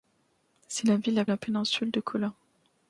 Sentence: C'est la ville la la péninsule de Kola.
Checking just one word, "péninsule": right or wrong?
right